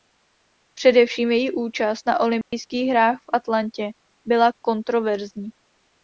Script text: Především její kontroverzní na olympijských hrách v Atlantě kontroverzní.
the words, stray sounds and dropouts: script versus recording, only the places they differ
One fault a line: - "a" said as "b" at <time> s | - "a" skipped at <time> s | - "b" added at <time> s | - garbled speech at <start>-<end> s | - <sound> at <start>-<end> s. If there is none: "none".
- "kontroverzní" said as "účast" at 1.5 s
- dropout at 2.4-2.5 s
- "byla" added at 4.3 s